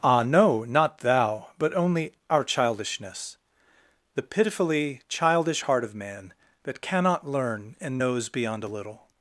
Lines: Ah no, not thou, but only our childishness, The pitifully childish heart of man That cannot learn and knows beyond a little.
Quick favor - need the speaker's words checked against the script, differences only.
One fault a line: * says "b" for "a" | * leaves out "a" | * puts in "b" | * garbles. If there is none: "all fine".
all fine